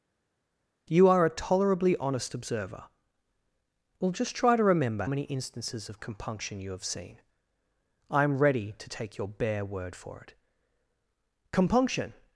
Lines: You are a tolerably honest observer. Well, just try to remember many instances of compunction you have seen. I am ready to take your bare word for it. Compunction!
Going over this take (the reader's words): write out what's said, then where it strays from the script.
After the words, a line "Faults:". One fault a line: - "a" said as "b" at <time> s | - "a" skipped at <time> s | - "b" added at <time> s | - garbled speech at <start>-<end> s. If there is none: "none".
You are a tolerably honest observer. Well, just try to remember many instances of compunction you have seen. I am ready to take your bare word for it. Compunction!
Faults:
none